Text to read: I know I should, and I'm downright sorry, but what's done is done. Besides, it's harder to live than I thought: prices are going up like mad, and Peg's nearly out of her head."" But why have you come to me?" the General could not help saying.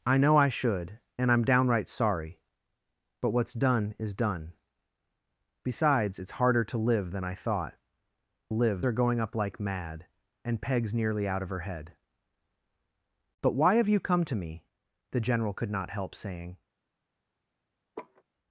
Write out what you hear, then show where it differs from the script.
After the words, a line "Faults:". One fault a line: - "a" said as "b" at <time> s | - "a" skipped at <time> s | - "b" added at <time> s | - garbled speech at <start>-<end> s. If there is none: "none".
I know I should, and I'm downright sorry, but what's done is done. Besides, it's harder to live than I thought: live are going up like mad, and Peg's nearly out of her head."" But why have you come to me?" the General could not help saying.
Faults:
- "prices" said as "live" at 8.5 s